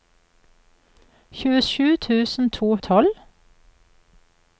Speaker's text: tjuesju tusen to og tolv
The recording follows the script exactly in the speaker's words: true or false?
true